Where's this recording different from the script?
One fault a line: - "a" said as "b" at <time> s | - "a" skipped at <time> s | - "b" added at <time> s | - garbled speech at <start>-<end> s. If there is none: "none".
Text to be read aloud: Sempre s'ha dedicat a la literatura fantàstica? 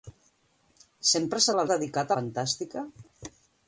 - "dedicat" skipped at 1.6 s
- "literatura" said as "dedicat" at 1.7 s